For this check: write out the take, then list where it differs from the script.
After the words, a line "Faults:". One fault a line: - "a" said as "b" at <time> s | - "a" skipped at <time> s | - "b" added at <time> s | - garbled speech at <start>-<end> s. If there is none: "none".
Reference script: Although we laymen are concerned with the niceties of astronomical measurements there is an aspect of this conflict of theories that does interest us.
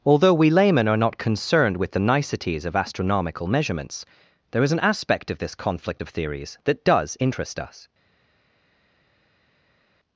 Although we laymen are not concerned with the niceties of astronomical measurements there is an aspect of this conflict of theories that does interest us.
Faults:
- "not" added at 1.0 s